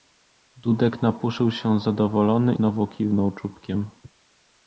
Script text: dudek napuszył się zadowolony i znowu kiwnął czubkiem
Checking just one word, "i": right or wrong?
wrong